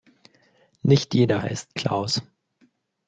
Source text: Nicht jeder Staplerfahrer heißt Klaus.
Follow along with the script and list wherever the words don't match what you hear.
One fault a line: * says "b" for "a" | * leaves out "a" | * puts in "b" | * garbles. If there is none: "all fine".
* leaves out "Staplerfahrer"